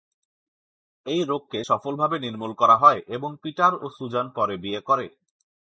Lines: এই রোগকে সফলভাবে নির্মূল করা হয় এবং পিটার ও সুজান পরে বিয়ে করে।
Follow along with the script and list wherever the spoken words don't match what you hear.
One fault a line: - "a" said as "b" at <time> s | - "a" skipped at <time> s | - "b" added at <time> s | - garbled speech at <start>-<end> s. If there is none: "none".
none